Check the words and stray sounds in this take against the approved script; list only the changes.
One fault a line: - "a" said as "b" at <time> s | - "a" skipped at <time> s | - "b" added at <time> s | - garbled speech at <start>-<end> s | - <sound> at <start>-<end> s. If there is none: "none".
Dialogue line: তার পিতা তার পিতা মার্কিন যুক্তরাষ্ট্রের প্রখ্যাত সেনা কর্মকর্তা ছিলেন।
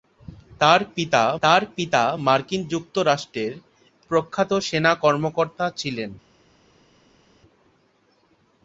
none